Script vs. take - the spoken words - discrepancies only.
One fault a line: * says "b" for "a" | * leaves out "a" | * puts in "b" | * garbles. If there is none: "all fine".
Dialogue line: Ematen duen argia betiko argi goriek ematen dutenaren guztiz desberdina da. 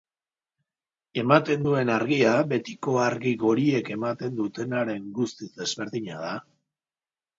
all fine